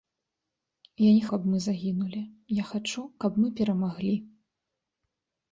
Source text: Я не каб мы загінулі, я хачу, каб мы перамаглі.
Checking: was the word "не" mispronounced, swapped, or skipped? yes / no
no